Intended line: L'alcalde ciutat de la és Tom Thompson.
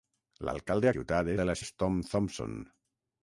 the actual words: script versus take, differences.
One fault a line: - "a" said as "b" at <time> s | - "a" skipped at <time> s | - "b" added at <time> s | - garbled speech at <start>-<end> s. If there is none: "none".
none